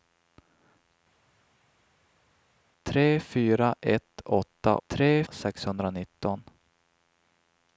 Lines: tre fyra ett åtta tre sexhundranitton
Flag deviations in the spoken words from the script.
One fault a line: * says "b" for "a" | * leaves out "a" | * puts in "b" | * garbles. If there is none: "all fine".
all fine